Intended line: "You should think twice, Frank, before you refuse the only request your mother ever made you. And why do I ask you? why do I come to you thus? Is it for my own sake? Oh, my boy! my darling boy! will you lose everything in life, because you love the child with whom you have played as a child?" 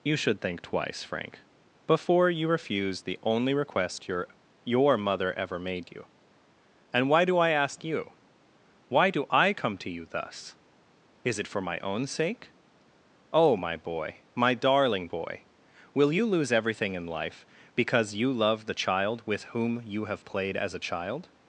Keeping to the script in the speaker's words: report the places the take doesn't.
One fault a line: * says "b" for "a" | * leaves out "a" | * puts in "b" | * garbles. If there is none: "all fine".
* puts in "your"